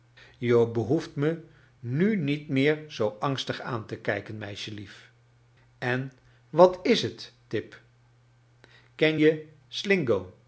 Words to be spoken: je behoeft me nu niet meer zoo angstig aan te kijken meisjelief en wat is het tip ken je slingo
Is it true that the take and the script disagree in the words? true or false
false